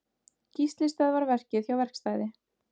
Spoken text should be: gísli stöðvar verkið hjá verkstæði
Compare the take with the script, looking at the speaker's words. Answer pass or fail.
pass